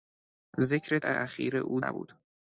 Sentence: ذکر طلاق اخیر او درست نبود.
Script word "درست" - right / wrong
wrong